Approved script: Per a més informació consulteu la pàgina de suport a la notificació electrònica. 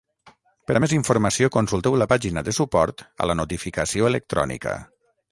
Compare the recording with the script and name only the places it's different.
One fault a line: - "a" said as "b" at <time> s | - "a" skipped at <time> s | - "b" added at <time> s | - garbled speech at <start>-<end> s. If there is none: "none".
none